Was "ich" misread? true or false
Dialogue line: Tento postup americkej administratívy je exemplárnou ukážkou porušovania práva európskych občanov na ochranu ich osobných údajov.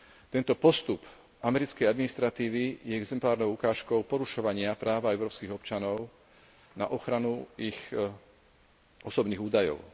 false